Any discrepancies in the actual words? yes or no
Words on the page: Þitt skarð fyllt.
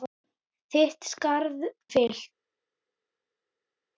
no